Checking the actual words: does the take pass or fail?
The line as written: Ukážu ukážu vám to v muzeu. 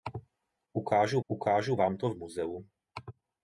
pass